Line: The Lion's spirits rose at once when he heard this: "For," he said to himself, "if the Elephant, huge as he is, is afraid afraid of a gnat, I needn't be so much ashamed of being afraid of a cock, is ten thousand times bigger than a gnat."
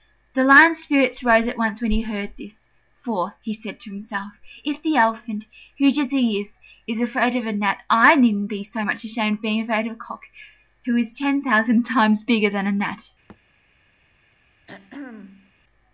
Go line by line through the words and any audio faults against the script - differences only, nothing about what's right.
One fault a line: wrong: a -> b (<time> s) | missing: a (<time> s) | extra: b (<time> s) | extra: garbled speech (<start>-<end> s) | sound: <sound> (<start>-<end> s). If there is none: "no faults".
missing: afraid (7.3 s)
extra: who (10.9 s)
sound: thud (13.3-13.4 s)
sound: throat clearing (14.7-15.5 s)